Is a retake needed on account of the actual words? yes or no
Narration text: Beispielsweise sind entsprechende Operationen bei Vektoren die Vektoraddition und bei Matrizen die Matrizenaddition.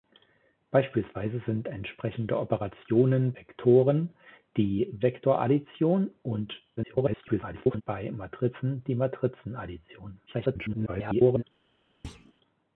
yes